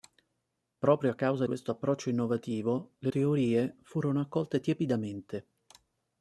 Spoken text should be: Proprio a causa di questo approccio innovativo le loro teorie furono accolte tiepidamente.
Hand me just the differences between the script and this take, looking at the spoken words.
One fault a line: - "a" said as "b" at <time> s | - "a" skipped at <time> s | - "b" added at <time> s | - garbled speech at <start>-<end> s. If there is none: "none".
- "di" skipped at 1.4 s
- "loro" skipped at 3.1 s